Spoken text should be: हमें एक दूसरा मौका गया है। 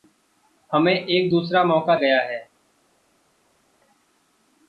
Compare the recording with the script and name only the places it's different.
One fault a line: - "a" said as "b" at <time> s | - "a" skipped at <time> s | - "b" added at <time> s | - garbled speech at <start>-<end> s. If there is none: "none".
none